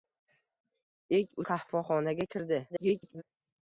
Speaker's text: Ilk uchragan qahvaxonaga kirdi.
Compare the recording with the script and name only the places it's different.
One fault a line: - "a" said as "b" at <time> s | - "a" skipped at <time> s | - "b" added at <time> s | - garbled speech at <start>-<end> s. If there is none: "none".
- "uchragan" skipped at 1.4 s
- garbled speech at 2.7-3.2 s